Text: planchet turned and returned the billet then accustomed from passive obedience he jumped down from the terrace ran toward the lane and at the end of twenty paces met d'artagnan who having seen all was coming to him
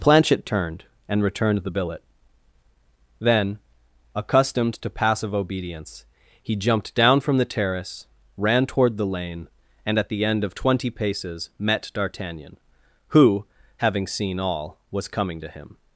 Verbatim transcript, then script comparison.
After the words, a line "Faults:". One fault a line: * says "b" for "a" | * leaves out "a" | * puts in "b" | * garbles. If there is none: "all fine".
planchet turned and returned the billet then accustomed to passive obedience he jumped down from the terrace ran toward the lane and at the end of twenty paces met d'artagnan who having seen all was coming to him
Faults:
* says "to" for "from"